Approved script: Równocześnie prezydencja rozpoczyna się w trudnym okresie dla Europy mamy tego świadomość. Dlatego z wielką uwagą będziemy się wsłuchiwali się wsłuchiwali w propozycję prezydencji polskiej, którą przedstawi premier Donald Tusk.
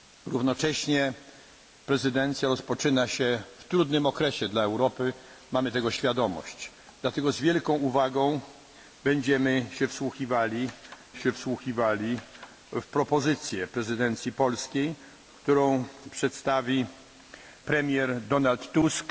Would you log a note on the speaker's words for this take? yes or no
no